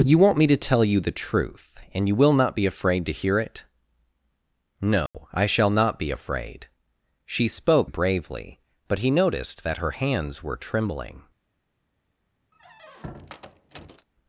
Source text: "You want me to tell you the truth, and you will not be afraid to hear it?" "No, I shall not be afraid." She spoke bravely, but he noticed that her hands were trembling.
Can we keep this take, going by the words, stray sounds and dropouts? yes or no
no